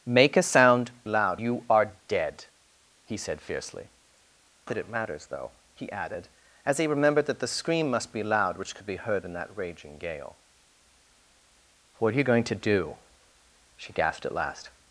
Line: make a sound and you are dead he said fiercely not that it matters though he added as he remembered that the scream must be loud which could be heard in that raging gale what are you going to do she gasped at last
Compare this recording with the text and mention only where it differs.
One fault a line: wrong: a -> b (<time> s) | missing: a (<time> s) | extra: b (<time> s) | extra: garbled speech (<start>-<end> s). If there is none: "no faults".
wrong: and -> loud (1.1 s)
missing: not (3.9 s)